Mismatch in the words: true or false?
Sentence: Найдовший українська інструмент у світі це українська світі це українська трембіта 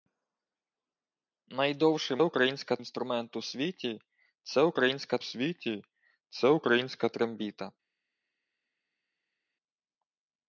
false